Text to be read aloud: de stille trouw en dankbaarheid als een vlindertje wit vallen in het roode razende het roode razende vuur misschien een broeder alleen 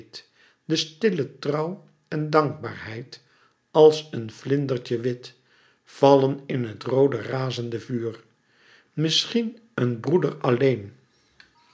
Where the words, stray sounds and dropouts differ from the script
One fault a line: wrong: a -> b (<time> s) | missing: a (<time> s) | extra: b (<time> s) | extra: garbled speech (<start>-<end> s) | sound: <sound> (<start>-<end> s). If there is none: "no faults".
missing: het roode razende (7.8 s)